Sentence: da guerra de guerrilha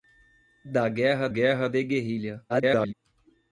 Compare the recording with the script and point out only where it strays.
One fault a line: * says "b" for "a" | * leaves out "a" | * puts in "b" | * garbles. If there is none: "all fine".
* puts in "guerra"
* garbles